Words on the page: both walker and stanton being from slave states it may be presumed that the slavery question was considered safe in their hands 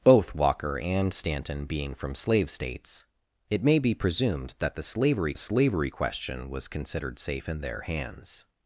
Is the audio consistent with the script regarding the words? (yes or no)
no